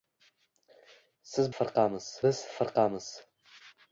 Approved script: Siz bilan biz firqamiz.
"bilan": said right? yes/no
no